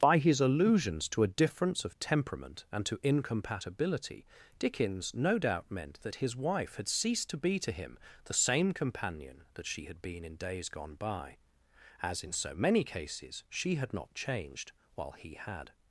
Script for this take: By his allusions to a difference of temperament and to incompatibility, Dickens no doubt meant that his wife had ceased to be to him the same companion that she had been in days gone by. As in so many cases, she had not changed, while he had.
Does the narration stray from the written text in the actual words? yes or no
no